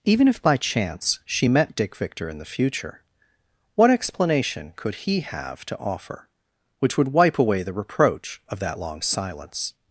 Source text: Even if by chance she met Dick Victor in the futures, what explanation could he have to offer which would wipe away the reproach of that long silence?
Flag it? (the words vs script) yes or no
yes